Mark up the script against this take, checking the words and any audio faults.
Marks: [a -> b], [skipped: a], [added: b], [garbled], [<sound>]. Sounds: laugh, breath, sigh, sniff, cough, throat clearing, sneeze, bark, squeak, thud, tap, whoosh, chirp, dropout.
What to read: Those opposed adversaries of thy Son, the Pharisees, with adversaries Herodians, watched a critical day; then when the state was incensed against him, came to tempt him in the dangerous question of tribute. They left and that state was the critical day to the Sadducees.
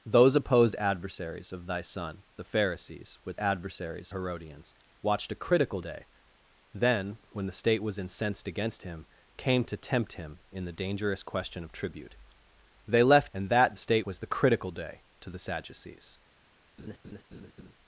Those opposed adversaries of thy Son, the Pharisees, with adversaries Herodians, watched a critical day; then when the state was incensed against him, came to tempt him in the dangerous question of tribute. They left and that state was the critical day to the Sadducees. [laugh]